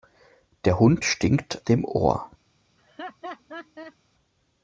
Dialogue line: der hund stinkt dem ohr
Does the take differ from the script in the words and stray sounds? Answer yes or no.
yes